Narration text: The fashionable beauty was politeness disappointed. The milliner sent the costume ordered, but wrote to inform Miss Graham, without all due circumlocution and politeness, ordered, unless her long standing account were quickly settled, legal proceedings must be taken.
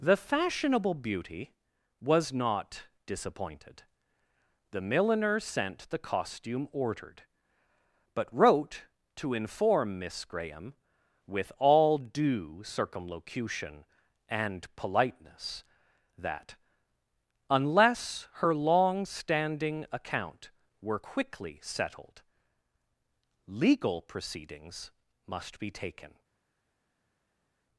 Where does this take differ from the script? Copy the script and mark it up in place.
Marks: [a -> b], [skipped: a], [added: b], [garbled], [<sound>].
The fashionable beauty was [politeness -> not] disappointed. The milliner sent the costume ordered, but wrote to inform Miss Graham, [without -> with] all due circumlocution and politeness, [ordered, -> that] unless her long standing account were quickly settled, legal proceedings must be taken.